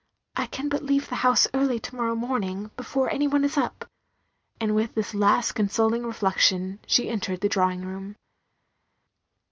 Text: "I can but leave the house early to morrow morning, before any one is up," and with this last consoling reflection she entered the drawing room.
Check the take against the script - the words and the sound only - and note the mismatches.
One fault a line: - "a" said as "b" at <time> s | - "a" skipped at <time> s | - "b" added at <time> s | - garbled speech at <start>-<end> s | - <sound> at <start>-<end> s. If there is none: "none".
none